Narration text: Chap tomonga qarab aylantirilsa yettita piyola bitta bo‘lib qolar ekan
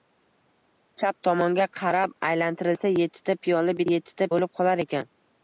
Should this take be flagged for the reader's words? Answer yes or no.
yes